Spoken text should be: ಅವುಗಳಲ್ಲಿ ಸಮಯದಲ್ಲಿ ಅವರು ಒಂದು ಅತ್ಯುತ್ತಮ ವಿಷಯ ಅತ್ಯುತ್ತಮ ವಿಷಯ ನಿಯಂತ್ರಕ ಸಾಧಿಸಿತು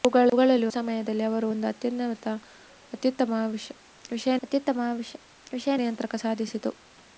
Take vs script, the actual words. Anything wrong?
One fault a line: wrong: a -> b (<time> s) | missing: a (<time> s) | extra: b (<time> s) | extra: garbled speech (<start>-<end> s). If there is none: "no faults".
no faults